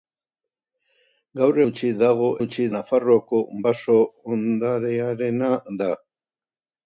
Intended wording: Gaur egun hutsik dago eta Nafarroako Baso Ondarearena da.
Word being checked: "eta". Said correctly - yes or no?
no